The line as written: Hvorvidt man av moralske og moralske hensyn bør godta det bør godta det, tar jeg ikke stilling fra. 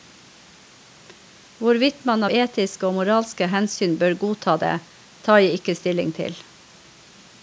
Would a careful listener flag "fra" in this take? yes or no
yes